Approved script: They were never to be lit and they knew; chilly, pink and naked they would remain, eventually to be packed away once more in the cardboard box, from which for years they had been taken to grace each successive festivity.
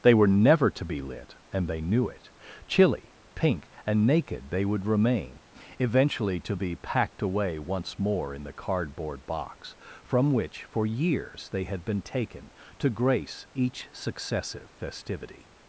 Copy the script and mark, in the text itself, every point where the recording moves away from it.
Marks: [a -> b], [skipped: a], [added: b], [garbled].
They were never to be lit and they knew; [added: it] chilly, pink and naked they would remain, eventually to be packed away once more in the cardboard box, from which for years they had been taken to grace each successive festivity.